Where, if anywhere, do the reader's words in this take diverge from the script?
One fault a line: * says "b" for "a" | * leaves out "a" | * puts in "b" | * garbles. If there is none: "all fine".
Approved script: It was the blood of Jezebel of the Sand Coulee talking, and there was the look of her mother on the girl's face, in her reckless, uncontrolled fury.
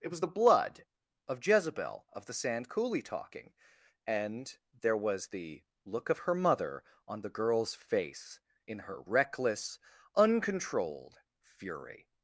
all fine